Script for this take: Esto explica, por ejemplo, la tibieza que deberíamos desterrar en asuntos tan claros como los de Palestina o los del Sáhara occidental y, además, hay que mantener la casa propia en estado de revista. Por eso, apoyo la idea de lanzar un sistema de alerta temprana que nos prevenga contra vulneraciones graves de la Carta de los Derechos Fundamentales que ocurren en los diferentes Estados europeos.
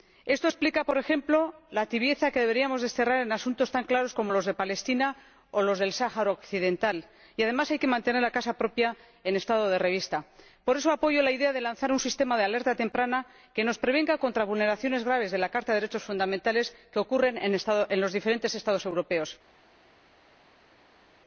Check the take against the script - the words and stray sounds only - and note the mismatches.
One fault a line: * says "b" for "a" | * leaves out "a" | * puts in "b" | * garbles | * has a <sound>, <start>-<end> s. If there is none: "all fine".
all fine